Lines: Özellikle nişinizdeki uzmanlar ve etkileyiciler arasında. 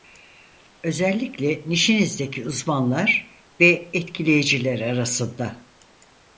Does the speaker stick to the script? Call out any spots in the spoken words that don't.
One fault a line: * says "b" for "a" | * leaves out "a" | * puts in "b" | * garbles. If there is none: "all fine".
all fine